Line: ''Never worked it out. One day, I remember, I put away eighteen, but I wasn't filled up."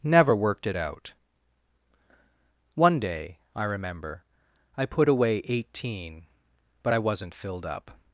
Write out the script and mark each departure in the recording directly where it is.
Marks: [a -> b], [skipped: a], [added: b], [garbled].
''Never worked it out. One day, I remember, I put away eighteen, but I wasn't filled up."